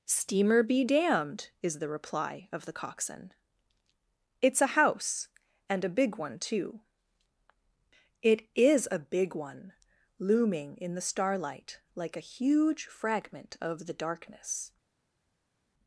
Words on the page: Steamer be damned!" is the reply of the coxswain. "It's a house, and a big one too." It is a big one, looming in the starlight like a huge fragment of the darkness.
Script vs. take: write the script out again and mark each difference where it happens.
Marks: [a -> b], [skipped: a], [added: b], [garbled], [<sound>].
Steamer be damned!" is the reply of the coxswain. "It's a house, and a big one too." It is a big one, looming in the starlight like a huge fragment of the darkness.